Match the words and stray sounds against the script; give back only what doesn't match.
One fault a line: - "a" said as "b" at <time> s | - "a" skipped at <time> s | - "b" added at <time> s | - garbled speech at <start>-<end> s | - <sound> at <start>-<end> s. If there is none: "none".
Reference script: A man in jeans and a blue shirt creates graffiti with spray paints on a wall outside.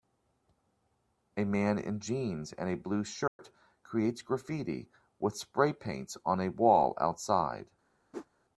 - dropout at 3.3-3.4 s
- whoosh at 8.1-8.3 s